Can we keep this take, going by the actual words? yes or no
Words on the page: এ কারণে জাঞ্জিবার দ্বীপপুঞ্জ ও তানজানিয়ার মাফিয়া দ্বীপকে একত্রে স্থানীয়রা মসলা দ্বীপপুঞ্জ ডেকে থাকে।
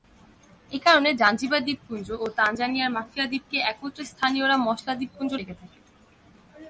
yes